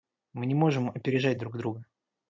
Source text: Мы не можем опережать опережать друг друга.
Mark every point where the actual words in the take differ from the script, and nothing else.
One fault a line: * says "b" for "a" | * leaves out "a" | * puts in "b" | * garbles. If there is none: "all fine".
* leaves out "опережать"